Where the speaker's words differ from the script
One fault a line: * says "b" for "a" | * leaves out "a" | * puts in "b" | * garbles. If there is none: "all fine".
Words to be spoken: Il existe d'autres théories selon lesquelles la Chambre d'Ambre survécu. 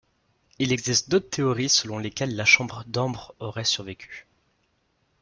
* puts in "aurait"